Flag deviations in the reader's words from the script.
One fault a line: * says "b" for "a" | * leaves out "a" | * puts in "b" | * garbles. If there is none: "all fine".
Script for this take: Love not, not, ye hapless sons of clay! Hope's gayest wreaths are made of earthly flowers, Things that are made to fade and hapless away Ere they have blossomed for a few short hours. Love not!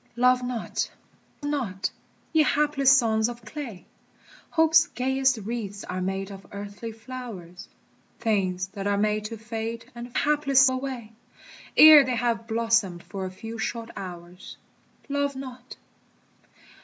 all fine